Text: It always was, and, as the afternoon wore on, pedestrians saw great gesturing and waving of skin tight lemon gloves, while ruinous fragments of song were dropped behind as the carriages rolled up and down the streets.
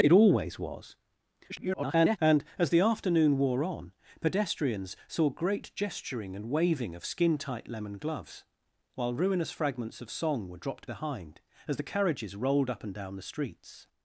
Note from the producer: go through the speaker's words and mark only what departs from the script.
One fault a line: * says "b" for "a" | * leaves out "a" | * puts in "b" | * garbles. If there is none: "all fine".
* garbles